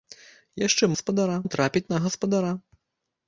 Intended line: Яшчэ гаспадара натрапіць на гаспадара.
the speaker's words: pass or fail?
pass